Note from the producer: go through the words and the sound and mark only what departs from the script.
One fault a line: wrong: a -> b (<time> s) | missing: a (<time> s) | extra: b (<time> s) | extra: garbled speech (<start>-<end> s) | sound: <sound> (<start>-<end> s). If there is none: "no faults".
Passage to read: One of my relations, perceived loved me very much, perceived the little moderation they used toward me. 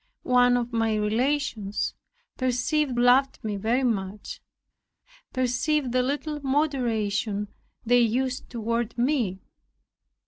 no faults